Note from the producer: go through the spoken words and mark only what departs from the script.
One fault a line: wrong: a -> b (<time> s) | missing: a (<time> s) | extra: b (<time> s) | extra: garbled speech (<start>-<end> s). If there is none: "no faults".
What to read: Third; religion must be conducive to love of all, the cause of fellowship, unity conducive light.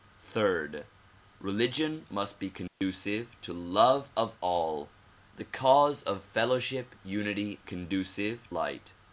no faults